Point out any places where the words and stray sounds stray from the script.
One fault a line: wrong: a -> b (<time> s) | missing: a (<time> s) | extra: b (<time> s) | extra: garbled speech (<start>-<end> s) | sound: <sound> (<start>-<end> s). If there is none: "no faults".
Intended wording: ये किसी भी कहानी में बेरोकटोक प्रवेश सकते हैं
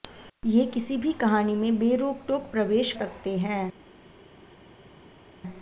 no faults